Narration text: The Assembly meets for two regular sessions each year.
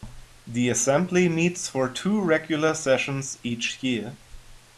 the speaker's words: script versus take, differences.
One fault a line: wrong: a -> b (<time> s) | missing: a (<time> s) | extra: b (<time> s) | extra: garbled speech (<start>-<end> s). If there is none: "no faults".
no faults